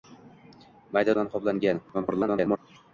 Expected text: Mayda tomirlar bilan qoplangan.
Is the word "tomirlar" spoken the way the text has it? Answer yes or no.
no